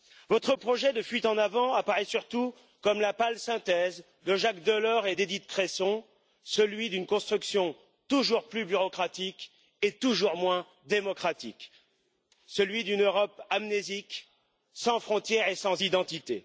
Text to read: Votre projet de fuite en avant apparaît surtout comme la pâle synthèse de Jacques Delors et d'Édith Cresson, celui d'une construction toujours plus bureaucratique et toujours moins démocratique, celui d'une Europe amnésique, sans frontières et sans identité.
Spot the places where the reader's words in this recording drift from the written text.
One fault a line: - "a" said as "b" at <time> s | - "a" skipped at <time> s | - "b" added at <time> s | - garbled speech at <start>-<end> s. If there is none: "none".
none